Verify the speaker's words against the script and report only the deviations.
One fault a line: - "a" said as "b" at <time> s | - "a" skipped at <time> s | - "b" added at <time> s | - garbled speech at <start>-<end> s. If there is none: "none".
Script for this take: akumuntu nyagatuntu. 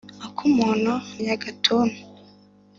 none